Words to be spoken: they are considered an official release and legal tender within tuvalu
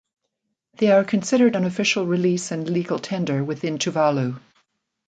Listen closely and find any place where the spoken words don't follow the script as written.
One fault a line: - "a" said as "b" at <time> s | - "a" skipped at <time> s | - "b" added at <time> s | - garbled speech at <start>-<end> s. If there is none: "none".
none